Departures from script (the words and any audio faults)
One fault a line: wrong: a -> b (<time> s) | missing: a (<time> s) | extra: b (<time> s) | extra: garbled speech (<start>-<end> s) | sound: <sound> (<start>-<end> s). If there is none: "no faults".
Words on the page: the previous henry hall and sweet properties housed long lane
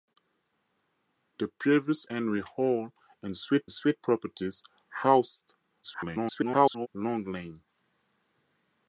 extra: sweet (3.7 s)
extra: garbled speech (5.8-6.9 s)